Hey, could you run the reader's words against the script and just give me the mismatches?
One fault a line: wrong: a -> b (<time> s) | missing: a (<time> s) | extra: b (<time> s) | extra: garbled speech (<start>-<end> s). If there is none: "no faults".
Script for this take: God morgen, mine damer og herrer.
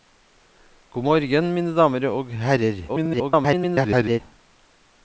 extra: garbled speech (2.9-4.2 s)